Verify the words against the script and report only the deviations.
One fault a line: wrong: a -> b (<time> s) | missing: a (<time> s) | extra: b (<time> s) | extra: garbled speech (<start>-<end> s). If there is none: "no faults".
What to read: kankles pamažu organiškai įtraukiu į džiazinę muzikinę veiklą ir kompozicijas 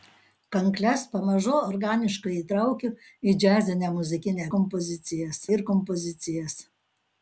wrong: veiklą -> kompozicijas (4.6 s)